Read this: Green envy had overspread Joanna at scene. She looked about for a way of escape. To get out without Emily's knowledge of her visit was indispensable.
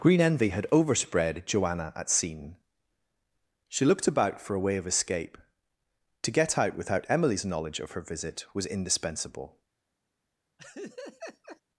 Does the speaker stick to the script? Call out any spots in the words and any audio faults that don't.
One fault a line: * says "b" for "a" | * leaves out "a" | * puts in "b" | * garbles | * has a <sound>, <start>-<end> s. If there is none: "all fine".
* has a laugh, 10.6-11.6 s